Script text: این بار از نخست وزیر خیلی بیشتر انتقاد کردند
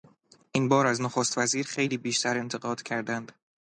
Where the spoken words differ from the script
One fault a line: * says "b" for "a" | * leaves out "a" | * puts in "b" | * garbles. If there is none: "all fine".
all fine